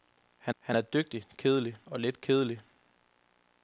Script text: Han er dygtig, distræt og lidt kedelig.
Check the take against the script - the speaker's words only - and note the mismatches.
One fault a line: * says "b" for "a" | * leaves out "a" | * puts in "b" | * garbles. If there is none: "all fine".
* puts in "han"
* says "kedelig" for "distræt"